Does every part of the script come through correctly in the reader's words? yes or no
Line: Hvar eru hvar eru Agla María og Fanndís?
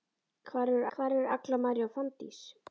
yes